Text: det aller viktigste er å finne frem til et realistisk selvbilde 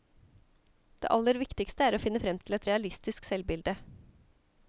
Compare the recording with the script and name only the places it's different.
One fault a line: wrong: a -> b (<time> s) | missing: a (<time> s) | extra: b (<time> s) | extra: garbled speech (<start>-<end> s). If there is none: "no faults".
no faults